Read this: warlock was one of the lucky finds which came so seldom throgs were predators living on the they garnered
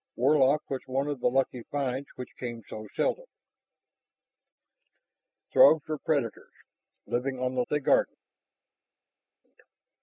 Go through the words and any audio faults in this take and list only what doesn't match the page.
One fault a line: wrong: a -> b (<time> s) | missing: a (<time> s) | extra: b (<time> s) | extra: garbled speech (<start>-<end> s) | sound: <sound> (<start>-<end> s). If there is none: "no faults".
no faults